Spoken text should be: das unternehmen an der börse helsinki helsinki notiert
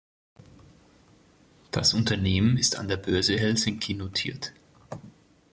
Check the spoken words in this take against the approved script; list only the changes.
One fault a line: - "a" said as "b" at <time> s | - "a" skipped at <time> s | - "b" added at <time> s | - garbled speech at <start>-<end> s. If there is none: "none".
- "ist" added at 2.5 s
- "helsinki" skipped at 3.9 s